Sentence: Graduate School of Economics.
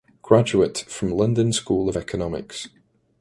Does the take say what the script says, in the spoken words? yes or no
no